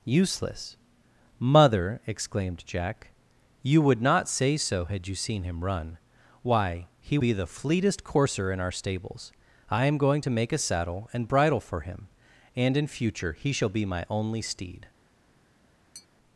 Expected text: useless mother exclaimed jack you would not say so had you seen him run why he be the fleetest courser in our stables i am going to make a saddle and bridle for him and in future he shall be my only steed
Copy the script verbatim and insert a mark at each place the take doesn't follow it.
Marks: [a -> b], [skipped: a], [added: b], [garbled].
useless mother exclaimed jack you would not say so had you seen him run why he be the fleetest courser in our stables i am going to make a saddle and bridle for him and in future he shall be my only steed